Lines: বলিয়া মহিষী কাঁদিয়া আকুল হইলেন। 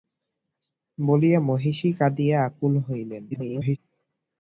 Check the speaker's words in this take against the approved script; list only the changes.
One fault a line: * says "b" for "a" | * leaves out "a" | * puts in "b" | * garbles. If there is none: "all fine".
* garbles